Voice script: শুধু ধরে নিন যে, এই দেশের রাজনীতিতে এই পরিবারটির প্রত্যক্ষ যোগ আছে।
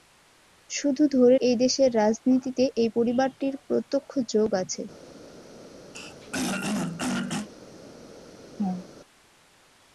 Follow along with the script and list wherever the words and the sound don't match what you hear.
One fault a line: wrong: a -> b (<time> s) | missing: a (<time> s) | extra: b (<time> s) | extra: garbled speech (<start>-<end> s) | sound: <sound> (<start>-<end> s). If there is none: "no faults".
missing: নিন যে (1.4 s)
sound: throat clearing (5.9-7.5 s)
sound: laugh (8.6-8.9 s)